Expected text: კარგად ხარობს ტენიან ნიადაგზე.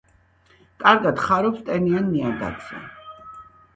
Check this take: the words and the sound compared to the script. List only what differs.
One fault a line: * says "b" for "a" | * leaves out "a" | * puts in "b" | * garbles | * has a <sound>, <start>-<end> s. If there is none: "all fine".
all fine